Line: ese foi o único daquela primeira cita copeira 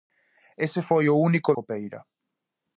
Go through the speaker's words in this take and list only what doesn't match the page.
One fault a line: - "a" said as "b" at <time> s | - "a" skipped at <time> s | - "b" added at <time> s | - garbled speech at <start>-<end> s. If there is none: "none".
- "daquela primeira cita" skipped at 1.5 s